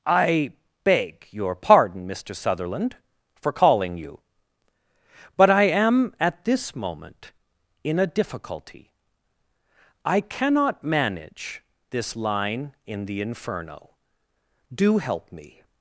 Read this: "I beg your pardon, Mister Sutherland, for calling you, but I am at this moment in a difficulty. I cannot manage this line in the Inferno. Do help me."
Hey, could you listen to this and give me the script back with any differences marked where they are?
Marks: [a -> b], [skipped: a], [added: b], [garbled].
"I beg your pardon, Mister Sutherland, for calling you, but I am at this moment in a difficulty. I cannot manage this line in the Inferno. Do help me."